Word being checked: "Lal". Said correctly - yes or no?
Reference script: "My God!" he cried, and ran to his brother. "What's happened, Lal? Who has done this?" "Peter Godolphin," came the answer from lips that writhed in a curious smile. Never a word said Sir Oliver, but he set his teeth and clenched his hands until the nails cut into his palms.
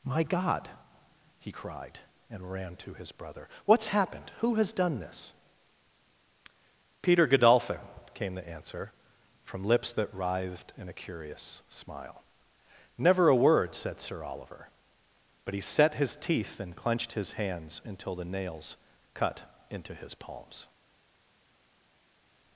no